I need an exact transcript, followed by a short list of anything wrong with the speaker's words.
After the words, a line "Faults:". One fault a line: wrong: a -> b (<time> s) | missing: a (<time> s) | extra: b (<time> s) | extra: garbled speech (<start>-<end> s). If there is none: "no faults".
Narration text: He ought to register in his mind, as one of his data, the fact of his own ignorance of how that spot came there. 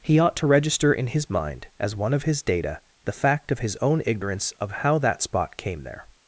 He ought to register in his mind, as one of his data, the fact of his own ignorance of how that spot came there.
Faults:
no faults